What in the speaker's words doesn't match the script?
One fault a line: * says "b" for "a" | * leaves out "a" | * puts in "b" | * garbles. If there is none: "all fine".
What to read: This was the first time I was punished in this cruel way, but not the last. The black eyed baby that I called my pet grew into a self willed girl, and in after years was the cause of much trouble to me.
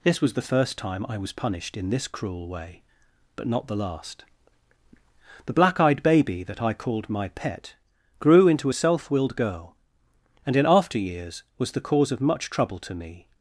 all fine